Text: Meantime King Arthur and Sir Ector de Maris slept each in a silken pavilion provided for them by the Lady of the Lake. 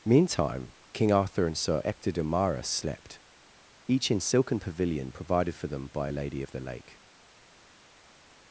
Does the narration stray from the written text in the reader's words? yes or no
yes